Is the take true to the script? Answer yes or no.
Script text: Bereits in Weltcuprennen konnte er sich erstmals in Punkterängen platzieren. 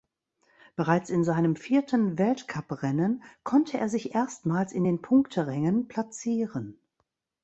no